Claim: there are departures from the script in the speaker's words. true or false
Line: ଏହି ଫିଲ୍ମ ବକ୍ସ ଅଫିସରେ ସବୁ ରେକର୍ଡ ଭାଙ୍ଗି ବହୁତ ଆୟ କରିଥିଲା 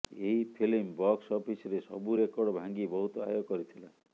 false